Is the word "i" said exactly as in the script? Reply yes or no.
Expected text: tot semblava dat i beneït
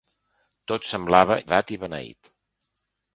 yes